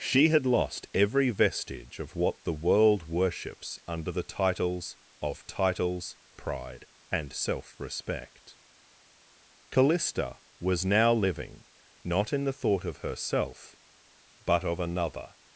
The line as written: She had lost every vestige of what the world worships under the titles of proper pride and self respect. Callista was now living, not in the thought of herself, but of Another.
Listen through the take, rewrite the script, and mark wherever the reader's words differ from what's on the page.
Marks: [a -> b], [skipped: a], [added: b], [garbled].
She had lost every vestige of what the world worships under the titles of [proper -> titles] pride and self respect. Callista was now living, not in the thought of herself, but of Another.